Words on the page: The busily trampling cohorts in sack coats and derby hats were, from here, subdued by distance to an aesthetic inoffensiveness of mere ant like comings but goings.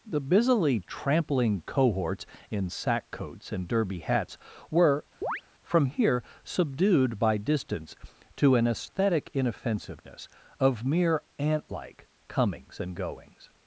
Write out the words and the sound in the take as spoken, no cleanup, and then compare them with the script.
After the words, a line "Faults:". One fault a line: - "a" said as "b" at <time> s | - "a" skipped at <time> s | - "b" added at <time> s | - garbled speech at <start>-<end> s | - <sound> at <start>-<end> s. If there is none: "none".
The busily trampling cohorts in sack coats and derby hats were, from here, subdued by distance to an aesthetic inoffensiveness of mere ant like comings and goings.
Faults:
- chirp at 5.2-5.4 s
- "but" said as "and" at 12.8 s